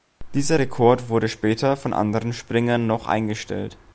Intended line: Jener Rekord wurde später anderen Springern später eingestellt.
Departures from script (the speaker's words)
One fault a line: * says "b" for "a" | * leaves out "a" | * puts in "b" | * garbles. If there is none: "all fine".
* says "Dieser" for "Jener"
* puts in "von"
* says "noch" for "später"